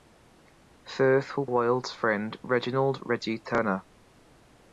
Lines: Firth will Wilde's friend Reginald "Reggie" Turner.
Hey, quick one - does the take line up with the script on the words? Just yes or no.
yes